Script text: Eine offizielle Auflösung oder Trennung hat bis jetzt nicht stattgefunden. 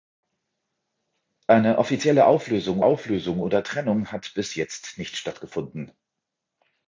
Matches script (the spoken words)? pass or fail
fail